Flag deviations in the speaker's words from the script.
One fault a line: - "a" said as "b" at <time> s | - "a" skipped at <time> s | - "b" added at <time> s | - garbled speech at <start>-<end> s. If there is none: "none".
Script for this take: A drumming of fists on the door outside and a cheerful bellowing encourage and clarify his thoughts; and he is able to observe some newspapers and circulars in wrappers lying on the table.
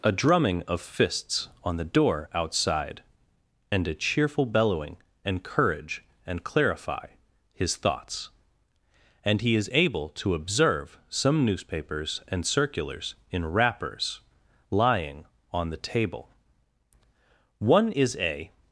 - "One is a" added at 17.6 s